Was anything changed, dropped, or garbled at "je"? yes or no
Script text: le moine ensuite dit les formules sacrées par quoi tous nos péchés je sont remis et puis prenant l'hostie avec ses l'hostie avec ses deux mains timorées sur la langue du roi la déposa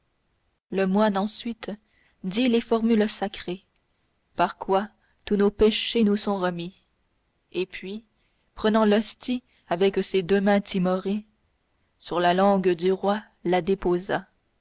yes